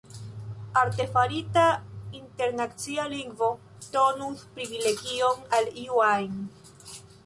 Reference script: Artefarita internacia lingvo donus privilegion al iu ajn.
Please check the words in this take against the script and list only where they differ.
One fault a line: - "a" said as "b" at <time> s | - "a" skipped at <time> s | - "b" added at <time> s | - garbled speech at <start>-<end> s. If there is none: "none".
none